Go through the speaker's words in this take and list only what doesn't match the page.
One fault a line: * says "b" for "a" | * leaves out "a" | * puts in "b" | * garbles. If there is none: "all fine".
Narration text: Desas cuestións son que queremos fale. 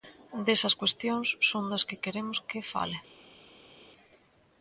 * puts in "das"
* puts in "que"